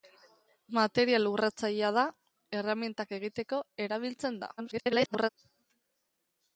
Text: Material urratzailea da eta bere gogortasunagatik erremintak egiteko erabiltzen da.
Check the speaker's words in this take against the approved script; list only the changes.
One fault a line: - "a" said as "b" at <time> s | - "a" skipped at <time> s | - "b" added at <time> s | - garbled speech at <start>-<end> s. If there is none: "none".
- "eta bere gogortasunagatik" skipped at 2.0 s
- garbled speech at 4.6-5.3 s